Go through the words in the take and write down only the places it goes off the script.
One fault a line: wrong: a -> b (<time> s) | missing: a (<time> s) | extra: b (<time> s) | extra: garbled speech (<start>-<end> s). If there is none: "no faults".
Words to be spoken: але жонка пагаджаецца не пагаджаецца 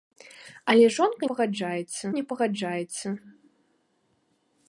no faults